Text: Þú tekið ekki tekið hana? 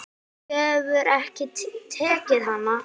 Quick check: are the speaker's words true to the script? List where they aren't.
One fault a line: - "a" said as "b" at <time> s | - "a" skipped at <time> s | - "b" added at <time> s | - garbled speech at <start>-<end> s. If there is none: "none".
- "tekið" said as "hefur" at 0.6 s